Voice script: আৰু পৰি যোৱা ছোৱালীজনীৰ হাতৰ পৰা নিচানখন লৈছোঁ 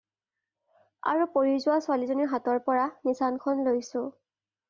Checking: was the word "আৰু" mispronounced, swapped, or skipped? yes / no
no